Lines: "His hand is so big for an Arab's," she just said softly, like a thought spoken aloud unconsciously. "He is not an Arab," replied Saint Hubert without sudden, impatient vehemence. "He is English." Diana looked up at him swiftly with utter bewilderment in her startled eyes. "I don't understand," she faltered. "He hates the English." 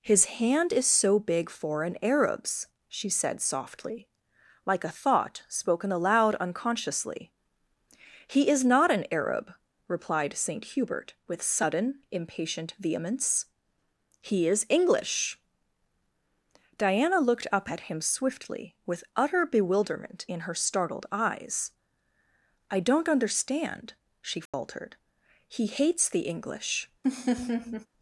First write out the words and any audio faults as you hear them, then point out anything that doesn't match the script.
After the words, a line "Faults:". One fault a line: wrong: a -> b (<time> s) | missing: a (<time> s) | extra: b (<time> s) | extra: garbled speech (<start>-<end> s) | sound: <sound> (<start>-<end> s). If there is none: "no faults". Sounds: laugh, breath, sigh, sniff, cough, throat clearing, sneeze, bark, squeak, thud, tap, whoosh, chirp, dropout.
"His hand is so big for an Arab's," she said softly, like a thought spoken aloud unconsciously. "He is not an Arab," replied Saint Hubert with sudden, impatient vehemence. "He is English." Diana looked up at him swiftly with utter bewilderment in her startled eyes. "I don't understand," she faltered. "He hates the English."
Faults:
missing: just (3.1 s)
wrong: without -> with (11.3 s)
sound: dropout (24.5-24.5 s)
sound: laugh (27.0-27.9 s)